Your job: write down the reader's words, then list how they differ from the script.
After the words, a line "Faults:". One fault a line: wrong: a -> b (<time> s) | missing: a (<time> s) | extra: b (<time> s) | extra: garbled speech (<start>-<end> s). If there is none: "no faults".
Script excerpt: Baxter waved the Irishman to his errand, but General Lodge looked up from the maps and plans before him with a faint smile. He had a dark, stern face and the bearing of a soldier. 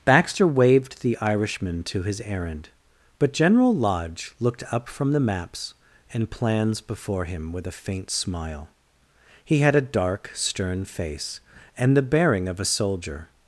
Baxter waved the Irishman to his errand, but General Lodge looked up from the maps and plans before him with a faint smile. He had a dark, stern face and the bearing of a soldier.
Faults:
no faults